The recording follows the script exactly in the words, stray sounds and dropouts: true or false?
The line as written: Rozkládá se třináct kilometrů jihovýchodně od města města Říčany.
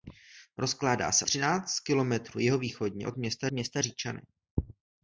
true